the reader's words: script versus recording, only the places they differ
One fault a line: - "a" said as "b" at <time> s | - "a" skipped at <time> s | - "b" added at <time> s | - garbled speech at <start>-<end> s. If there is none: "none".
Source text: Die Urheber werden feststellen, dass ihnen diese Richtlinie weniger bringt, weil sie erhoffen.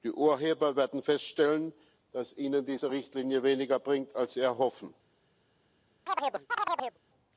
- "weil" said as "als" at 4.1 s